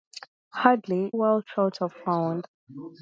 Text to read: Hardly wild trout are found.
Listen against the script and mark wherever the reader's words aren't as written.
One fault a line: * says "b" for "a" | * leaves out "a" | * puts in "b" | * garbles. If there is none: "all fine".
all fine